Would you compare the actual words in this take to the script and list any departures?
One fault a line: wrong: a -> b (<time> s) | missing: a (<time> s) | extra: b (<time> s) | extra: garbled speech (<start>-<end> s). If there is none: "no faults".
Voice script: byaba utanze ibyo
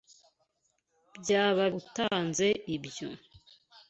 no faults